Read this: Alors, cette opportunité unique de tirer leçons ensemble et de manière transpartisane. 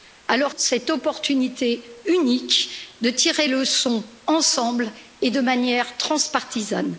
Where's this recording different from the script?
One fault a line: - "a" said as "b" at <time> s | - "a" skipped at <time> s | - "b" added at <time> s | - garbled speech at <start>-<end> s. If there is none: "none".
none